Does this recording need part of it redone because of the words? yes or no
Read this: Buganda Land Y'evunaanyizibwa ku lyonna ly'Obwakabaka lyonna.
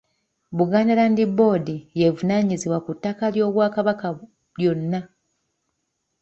yes